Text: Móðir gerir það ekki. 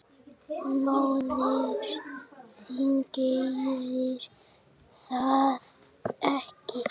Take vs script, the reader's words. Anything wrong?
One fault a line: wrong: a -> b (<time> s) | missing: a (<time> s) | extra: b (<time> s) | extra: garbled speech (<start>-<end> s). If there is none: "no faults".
extra: þín (2.6 s)